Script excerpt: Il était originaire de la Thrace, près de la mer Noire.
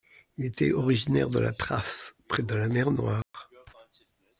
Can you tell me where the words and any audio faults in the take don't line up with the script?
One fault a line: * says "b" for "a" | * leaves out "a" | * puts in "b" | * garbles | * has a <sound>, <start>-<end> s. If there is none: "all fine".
* has a dropout, 3.2-3.3 s